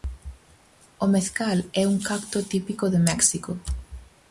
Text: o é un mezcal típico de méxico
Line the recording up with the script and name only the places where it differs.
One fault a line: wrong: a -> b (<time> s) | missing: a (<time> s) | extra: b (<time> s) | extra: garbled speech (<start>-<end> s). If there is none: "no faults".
extra: mezcal (1.1 s)
wrong: mezcal -> cacto (2.1 s)